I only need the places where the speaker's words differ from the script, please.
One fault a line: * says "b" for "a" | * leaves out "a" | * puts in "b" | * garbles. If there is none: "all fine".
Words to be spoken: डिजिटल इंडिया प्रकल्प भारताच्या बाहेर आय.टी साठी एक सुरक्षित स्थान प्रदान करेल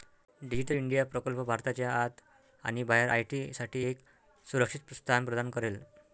* puts in "आत आणि"